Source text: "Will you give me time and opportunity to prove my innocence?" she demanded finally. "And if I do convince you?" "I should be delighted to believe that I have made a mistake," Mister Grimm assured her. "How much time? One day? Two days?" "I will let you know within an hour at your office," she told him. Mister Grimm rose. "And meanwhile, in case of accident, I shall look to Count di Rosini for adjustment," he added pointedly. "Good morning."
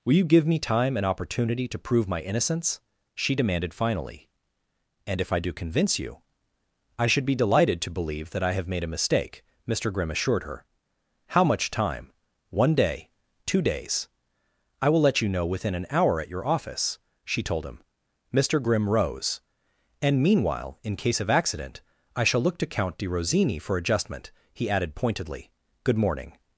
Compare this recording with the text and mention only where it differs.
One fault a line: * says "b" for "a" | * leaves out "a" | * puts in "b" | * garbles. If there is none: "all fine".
all fine